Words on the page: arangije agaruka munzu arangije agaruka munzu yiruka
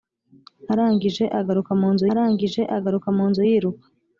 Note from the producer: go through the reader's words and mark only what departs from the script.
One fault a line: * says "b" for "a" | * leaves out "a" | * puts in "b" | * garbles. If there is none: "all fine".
all fine